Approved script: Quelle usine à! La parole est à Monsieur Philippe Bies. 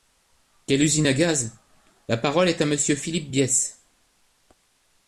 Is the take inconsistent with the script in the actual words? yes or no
yes